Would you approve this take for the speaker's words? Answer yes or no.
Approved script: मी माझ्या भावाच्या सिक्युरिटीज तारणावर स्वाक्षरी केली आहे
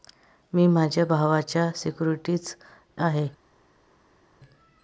no